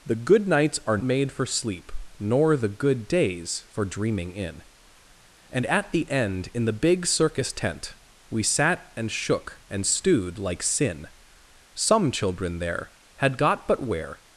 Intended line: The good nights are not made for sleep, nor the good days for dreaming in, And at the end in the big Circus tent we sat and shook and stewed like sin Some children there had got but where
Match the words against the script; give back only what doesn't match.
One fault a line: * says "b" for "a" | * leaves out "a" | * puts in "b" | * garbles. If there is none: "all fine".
* leaves out "not"